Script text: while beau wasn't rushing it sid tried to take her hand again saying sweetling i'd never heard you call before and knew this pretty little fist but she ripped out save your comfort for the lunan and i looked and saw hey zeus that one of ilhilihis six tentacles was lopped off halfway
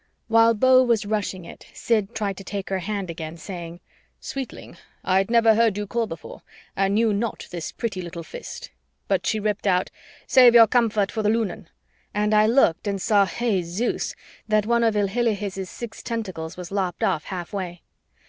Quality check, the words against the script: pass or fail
fail